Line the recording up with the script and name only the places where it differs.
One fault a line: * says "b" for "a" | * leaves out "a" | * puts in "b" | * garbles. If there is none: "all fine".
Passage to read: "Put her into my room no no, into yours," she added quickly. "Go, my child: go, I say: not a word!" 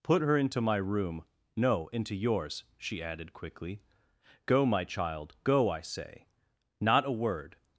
* leaves out "no"